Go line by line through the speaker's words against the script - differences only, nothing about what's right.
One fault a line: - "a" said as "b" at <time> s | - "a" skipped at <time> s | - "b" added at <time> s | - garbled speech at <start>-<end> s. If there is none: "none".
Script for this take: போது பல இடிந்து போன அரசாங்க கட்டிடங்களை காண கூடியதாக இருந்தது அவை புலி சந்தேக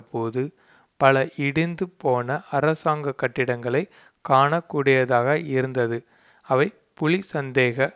none